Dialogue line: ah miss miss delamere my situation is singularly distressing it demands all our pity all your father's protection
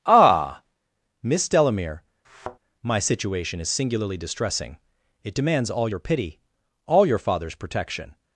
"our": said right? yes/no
no